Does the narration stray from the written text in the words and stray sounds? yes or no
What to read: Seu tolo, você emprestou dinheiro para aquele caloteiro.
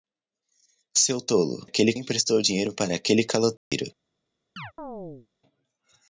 yes